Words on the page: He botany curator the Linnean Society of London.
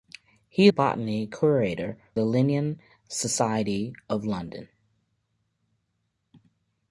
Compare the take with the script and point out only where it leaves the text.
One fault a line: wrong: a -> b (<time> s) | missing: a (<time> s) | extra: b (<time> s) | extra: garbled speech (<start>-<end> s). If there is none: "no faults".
no faults